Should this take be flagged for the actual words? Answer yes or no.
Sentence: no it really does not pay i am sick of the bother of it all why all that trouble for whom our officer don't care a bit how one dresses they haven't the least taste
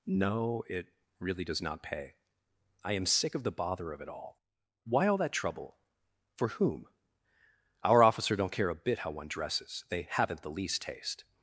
no